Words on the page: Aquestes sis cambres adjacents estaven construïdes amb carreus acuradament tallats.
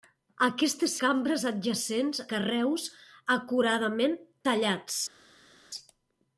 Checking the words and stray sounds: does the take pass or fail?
fail